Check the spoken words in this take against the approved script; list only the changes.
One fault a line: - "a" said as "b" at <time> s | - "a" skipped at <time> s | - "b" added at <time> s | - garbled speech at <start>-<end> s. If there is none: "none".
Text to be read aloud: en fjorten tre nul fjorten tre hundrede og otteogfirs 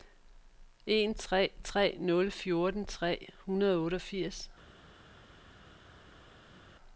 - "fjorten" said as "tre" at 1.1 s